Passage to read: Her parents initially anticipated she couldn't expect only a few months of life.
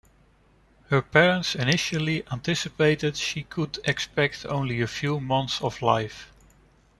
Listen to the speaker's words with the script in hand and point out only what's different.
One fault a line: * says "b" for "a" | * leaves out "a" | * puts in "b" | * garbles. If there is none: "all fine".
* says "could" for "couldn't"